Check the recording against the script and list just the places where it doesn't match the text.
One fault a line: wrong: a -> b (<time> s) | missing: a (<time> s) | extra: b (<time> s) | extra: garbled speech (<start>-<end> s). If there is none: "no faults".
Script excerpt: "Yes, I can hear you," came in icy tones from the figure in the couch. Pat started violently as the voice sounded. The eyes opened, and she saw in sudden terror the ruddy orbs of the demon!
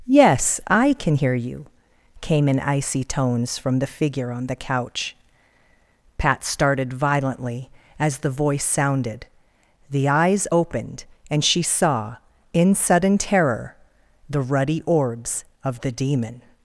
wrong: in -> on (4.3 s)